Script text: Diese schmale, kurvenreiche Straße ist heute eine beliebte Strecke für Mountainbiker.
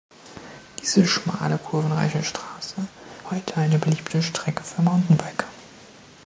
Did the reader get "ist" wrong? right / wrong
wrong